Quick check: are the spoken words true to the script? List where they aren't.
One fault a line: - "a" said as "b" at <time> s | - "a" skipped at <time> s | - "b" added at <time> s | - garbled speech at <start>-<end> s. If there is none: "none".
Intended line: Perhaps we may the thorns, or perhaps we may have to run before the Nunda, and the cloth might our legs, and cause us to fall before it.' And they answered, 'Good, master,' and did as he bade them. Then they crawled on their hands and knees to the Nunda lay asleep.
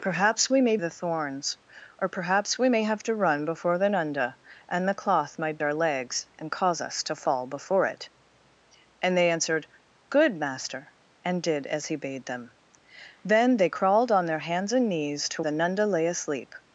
none